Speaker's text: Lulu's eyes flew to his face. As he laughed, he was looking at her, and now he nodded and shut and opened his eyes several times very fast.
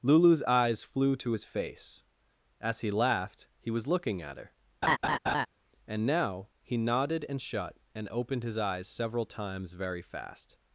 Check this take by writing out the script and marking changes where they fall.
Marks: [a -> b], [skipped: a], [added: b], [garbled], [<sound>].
Lulu's eyes flew to his face. As he laughed, he was looking at her, [laugh] and now he nodded and shut and opened his eyes several times very fast.